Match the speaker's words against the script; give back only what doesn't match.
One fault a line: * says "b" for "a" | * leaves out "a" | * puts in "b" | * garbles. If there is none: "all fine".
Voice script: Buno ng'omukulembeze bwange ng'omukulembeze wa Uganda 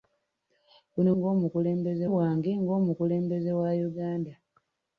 all fine